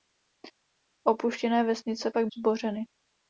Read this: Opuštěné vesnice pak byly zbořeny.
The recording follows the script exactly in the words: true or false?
false